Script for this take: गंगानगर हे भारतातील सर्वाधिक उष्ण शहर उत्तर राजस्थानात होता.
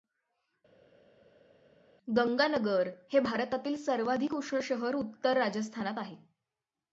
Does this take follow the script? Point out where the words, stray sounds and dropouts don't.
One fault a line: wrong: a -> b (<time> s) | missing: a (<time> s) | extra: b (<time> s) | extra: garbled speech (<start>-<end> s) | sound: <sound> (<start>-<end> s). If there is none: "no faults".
wrong: होता -> आहे (6.0 s)